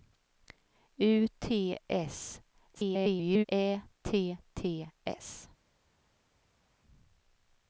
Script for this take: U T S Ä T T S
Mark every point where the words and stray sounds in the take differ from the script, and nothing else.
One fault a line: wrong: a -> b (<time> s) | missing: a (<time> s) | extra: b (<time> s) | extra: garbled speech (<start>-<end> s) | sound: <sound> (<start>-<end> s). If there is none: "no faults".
extra: garbled speech (2.7-3.5 s)